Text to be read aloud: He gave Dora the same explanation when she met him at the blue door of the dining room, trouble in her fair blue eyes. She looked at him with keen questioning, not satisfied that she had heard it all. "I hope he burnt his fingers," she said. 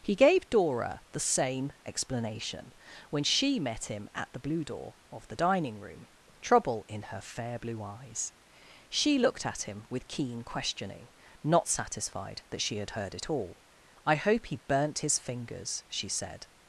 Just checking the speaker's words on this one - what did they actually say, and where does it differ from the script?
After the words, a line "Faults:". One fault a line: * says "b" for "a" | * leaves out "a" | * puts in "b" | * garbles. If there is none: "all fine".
He gave Dora the same explanation when she met him at the blue door of the dining room, trouble in her fair blue eyes. She looked at him with keen questioning, not satisfied that she had heard it all. "I hope he burnt his fingers," she said.
Faults:
all fine